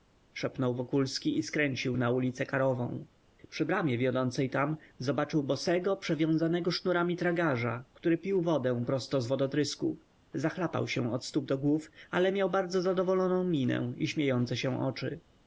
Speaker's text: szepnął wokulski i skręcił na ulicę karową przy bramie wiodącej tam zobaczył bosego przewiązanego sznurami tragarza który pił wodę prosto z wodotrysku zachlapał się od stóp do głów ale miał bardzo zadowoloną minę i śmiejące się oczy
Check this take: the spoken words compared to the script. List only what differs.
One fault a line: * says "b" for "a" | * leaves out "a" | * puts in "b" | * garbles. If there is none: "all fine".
all fine